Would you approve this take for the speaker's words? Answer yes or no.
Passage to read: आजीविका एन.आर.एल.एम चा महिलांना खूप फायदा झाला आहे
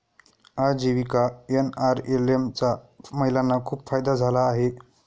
yes